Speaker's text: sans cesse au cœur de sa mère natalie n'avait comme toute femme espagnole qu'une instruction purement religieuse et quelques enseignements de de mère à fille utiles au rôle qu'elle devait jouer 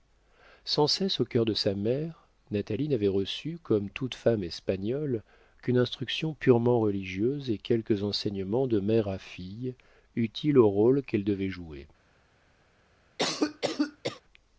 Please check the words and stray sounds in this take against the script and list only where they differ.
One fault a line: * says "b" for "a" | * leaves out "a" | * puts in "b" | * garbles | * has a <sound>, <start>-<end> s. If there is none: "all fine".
* puts in "reçu"
* leaves out "de"
* has a cough, 13.2-14.2 s